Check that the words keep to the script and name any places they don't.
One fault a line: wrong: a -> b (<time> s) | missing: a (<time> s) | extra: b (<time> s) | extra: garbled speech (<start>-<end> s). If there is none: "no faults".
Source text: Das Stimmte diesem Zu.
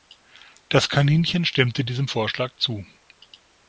extra: Kaninchen (0.9 s)
extra: Vorschlag (2.1 s)